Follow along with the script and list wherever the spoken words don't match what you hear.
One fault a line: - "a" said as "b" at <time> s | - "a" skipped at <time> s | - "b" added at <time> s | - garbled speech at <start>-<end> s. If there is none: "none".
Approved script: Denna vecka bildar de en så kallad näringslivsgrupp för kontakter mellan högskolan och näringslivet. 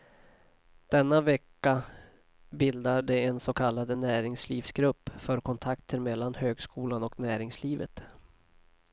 none